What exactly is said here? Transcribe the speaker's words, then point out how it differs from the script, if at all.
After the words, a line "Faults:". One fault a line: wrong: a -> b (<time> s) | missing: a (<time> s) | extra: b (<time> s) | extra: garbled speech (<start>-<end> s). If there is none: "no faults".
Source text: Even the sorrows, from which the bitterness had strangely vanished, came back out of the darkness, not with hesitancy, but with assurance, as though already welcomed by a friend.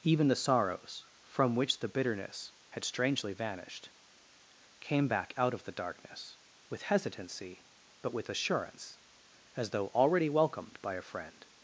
Even the sorrows, from which the bitterness had strangely vanished, came back out of the darkness, with hesitancy, but with assurance, as though already welcomed by a friend.
Faults:
missing: not (6.4 s)